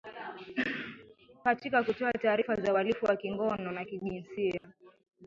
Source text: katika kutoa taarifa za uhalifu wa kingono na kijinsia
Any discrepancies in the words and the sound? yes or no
yes